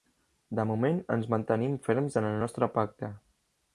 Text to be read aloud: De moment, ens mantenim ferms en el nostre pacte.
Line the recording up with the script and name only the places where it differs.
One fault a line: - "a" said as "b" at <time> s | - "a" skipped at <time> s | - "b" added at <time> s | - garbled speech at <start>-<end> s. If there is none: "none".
none